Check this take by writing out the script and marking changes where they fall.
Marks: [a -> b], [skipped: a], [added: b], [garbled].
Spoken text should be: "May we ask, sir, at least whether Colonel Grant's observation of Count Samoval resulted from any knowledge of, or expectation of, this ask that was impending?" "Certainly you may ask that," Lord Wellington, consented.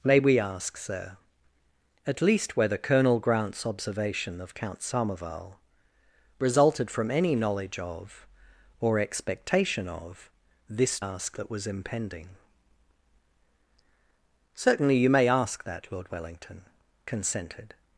"May we ask, sir, at least whether Colonel Grant's observation of Count Samoval resulted from any knowledge of, or expectation of, this ask that was impending?" "Certainly you may ask that," Lord Wellington, consented.